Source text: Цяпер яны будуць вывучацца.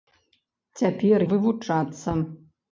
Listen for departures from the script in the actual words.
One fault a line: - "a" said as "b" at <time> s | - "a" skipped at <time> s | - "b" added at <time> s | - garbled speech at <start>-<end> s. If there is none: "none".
- "яны будуць" skipped at 1.2 s